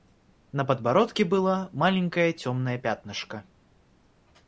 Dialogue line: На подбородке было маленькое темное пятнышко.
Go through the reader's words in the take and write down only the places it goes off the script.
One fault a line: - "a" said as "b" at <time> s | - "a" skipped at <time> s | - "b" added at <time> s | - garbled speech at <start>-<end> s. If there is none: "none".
none